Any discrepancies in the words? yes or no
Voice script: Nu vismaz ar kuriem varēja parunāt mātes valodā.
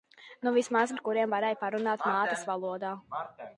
no